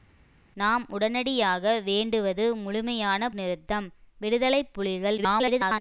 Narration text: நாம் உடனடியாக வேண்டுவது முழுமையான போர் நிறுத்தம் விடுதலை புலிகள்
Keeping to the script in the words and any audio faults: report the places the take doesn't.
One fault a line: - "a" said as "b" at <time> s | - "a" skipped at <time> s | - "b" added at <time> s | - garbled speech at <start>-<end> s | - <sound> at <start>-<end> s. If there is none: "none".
- "போர்" skipped at 3.3 s
- garbled speech at 5.2-5.8 s